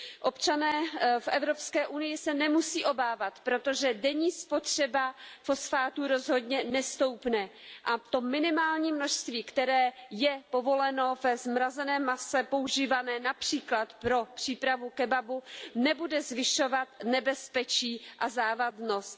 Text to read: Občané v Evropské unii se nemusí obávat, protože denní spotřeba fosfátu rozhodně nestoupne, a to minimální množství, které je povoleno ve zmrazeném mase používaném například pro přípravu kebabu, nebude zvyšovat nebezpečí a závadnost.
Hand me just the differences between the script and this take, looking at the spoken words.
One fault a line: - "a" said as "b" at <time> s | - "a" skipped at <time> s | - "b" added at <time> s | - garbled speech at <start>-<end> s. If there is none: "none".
none